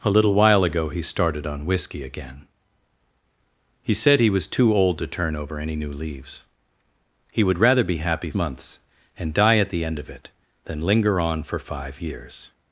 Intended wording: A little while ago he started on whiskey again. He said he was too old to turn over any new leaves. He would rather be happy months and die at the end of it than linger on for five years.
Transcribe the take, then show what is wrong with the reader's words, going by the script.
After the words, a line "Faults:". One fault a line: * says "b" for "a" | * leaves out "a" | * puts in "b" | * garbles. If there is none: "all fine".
A little while ago he started on whiskey again. He said he was too old to turn over any new leaves. He would rather be happy months and die at the end of it than linger on for five years.
Faults:
all fine